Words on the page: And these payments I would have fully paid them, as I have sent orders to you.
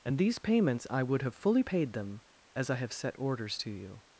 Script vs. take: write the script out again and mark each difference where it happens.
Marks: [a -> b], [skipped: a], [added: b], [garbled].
And these payments I would have fully paid them, as I have [sent -> set] orders to you.